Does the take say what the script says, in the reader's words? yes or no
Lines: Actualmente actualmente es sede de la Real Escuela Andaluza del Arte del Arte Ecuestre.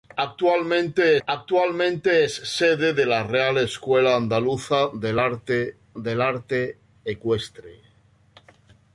yes